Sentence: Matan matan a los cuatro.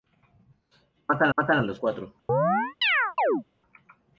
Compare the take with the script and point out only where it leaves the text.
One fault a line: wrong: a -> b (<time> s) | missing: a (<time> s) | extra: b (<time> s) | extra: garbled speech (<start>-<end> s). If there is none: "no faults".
no faults